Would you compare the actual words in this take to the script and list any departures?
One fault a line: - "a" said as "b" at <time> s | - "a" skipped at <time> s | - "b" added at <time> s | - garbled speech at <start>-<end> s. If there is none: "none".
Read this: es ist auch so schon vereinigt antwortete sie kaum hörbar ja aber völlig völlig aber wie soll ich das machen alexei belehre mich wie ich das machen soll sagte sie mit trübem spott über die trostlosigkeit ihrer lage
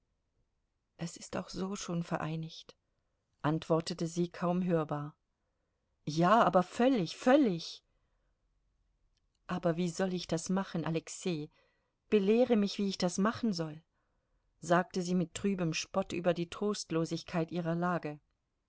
none